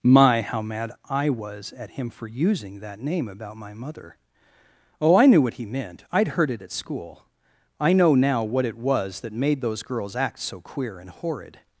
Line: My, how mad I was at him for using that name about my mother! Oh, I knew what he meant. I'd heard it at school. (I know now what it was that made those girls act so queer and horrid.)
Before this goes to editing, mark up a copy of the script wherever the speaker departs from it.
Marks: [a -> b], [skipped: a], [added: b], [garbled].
My, how mad I was at him for using that name about my mother! Oh, I knew what he meant. I'd heard it at school. (I know now what it was that made those girls act so queer and horrid.)